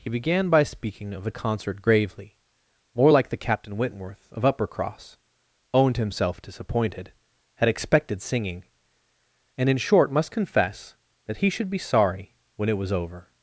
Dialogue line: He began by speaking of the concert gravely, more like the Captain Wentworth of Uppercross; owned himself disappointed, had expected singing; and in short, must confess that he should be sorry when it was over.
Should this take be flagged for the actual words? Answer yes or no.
no